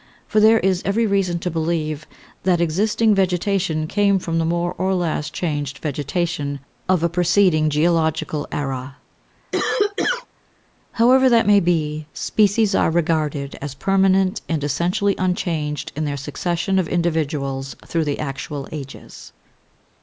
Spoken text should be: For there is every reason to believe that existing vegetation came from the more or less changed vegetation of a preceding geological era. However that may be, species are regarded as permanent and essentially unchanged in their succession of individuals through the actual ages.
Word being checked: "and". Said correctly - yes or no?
yes